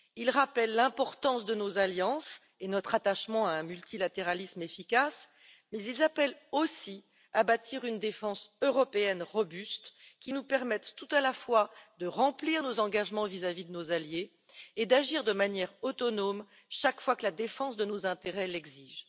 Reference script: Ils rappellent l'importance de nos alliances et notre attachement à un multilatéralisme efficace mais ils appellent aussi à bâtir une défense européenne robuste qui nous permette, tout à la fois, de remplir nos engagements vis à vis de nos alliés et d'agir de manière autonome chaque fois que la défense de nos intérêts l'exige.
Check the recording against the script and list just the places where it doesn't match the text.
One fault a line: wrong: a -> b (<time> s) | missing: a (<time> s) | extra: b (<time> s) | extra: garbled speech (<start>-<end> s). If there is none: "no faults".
no faults